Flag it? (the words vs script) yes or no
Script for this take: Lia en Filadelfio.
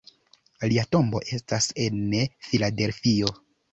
yes